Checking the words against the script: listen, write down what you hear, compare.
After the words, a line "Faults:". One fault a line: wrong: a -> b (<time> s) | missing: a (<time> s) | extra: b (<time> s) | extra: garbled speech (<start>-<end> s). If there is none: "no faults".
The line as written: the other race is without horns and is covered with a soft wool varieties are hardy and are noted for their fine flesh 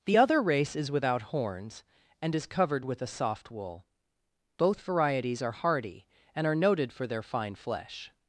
the other race is without horns and is covered with a soft wool both varieties are hardy and are noted for their fine flesh
Faults:
extra: both (4.6 s)